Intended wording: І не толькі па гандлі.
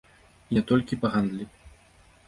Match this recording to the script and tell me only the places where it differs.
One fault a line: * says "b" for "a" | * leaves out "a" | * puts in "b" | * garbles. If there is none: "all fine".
all fine